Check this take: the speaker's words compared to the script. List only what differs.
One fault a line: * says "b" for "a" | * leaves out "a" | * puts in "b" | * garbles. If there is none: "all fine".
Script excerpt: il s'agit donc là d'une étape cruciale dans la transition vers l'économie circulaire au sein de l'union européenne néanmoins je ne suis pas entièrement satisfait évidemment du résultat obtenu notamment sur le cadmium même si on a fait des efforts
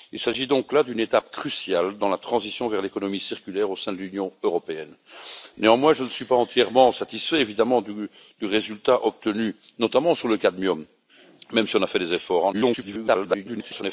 * garbles